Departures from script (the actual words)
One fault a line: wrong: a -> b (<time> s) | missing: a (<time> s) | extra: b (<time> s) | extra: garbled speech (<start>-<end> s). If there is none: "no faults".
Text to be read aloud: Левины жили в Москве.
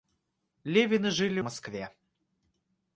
no faults